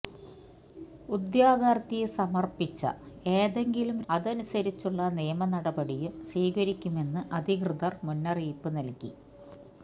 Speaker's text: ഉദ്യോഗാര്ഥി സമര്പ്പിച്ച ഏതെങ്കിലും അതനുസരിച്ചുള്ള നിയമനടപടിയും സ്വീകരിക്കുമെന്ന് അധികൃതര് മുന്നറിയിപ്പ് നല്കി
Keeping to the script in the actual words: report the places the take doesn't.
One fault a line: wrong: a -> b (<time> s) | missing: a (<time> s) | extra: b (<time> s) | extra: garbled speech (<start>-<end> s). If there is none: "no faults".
no faults